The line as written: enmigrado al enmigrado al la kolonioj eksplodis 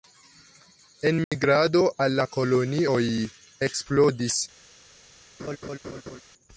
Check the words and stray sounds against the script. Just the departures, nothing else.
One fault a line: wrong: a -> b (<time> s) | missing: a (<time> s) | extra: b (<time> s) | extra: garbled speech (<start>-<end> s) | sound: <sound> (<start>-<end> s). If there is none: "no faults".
sound: dropout (1.2-1.3 s)
missing: enmigrado al (2.2 s)
sound: laugh (5.4-6.2 s)